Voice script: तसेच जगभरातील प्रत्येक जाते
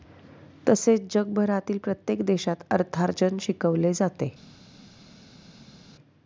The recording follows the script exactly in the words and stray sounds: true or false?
false